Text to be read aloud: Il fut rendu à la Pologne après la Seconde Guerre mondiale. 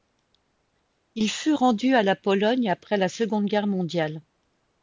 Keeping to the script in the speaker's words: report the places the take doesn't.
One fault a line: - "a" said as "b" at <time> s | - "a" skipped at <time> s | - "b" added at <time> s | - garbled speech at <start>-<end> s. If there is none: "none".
none